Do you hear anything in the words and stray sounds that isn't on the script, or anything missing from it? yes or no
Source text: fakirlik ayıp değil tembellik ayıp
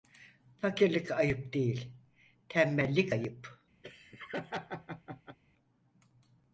yes